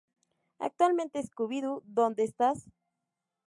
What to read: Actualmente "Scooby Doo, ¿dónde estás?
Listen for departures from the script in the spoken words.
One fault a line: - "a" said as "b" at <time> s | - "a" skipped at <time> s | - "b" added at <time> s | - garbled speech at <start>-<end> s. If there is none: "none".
none